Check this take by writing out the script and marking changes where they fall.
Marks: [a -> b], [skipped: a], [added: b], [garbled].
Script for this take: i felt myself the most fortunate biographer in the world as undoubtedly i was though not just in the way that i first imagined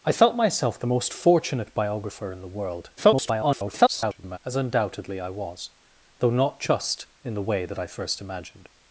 i felt myself the most fortunate biographer in the world [garbled] as undoubtedly i was though not just in the way that i first imagined